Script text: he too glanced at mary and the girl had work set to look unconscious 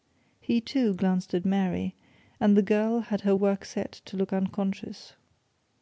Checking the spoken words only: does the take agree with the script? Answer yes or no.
no